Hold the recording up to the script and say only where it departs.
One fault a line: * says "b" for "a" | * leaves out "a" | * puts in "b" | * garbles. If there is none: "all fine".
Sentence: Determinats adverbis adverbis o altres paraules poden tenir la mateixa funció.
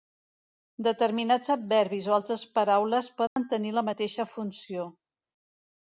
* leaves out "adverbis"